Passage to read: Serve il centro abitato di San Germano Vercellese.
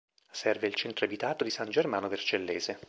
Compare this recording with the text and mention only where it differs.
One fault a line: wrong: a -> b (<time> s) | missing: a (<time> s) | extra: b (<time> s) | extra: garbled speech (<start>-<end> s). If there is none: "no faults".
no faults